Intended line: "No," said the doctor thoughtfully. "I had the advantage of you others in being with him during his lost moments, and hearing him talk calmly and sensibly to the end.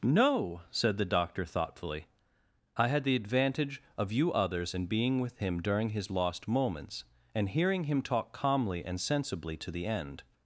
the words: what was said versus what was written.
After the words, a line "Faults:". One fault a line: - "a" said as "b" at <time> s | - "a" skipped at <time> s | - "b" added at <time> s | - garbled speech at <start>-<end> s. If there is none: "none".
"No," said the doctor thoughtfully. "I had the advantage of you others in being with him during his lost moments, and hearing him talk calmly and sensibly to the end.
Faults:
none